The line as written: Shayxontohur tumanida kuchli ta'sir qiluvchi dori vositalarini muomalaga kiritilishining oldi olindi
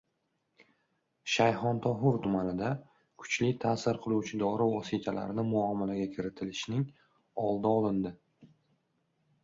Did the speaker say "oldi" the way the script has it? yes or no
yes